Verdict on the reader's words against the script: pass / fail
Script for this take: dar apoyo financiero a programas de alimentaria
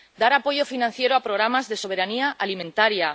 fail